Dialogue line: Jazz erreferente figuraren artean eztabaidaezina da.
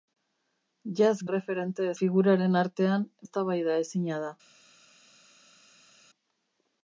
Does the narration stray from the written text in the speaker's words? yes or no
no